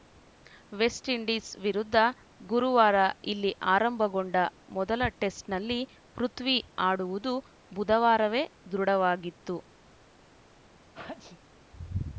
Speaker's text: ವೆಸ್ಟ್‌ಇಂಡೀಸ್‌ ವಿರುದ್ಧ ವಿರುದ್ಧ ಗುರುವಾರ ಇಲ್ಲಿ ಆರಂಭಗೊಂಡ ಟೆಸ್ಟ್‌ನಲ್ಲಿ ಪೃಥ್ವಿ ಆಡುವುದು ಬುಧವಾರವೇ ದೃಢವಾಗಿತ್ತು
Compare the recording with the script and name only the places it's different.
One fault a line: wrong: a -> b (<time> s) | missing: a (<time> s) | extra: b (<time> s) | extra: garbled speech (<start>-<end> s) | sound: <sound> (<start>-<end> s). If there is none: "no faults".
missing: ವಿರುದ್ಧ (2.0 s)
extra: ಮೊದಲ (4.8 s)
sound: sneeze (10.9-11.4 s)